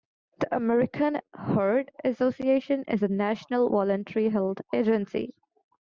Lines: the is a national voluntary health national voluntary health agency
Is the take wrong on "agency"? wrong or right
right